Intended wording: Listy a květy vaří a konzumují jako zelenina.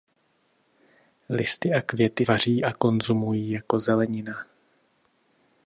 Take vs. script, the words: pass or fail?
pass